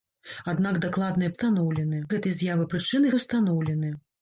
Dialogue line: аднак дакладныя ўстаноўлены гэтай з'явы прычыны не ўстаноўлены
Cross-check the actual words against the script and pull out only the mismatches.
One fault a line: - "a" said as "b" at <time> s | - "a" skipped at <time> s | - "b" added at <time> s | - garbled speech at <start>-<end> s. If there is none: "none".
none